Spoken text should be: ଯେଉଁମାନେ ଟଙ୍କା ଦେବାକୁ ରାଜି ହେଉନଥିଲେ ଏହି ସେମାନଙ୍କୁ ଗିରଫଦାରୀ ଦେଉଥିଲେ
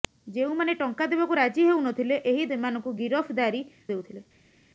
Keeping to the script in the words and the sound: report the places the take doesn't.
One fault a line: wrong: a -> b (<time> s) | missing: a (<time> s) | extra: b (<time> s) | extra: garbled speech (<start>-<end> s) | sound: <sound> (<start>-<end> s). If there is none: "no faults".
no faults